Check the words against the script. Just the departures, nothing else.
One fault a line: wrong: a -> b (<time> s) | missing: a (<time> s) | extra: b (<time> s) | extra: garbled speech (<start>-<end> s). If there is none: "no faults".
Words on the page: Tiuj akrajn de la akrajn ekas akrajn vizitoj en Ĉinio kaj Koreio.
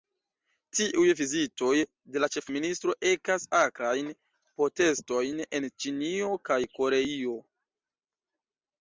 wrong: akrajn -> vizitoj (1.2 s)
wrong: akrajn -> ĉefministro (2.4 s)
wrong: vizitoj -> protestojn (4.6 s)